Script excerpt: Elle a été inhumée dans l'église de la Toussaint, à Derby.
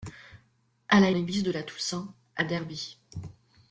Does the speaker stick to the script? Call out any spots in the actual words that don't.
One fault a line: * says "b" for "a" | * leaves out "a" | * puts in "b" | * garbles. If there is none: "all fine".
* leaves out "été inhumée dans"